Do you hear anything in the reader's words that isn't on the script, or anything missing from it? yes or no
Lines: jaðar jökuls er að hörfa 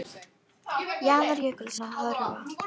no